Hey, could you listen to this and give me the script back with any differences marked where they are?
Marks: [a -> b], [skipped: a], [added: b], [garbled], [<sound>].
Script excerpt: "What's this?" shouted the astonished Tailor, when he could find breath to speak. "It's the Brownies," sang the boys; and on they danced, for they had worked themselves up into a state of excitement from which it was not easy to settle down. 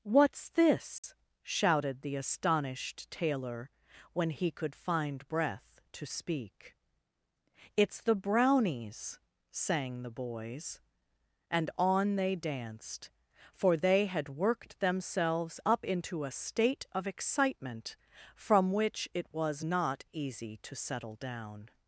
"What's this?" [dropout] shouted the astonished Tailor, when he could find breath to speak. "It's the Brownies," sang the boys; and on they danced, for they had worked themselves up into a state of excitement from which it was not easy to settle down.